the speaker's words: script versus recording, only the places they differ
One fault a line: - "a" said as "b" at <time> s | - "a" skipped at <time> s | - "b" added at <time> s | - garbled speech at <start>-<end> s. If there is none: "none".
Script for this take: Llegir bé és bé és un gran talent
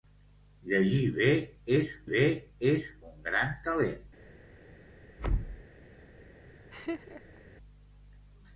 none